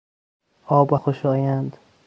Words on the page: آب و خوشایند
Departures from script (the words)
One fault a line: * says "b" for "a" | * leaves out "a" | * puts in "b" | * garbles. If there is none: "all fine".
all fine